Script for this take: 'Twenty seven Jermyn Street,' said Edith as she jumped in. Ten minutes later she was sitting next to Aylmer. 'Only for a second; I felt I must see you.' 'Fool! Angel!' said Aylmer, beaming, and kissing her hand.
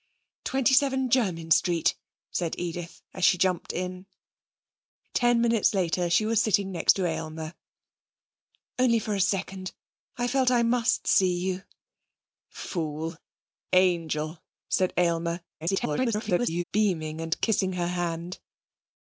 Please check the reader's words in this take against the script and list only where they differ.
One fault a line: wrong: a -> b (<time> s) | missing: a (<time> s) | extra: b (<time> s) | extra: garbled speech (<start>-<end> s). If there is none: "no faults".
extra: garbled speech (15.6-16.6 s)